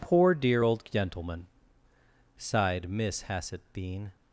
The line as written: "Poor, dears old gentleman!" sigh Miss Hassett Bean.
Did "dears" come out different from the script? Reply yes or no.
yes